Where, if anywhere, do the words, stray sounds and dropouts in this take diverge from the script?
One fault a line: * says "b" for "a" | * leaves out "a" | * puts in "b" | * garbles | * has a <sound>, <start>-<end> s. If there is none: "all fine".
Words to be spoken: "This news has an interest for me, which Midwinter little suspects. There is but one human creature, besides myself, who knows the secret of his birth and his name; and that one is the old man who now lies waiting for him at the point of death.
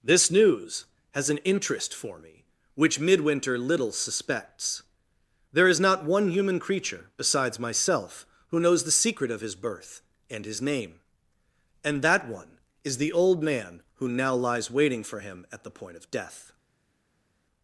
* says "not" for "but"